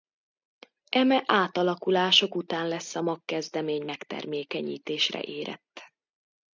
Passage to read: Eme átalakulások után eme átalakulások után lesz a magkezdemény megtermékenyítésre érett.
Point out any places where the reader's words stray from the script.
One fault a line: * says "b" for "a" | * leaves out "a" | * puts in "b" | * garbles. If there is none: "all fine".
* leaves out "eme átalakulások után"